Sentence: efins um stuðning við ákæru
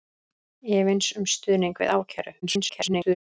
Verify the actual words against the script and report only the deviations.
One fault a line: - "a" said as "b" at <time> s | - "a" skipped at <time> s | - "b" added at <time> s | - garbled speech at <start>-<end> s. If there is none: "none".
- garbled speech at 2.4-3.2 s